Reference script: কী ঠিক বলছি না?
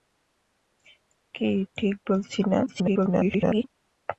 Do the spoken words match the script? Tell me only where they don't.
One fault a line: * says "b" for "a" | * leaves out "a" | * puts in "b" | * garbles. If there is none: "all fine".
* garbles